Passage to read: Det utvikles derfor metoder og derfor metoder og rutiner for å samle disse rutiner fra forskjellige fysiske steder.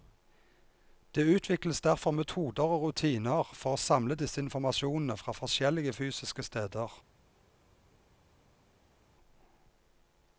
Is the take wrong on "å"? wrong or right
right